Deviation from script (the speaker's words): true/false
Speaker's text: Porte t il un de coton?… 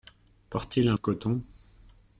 false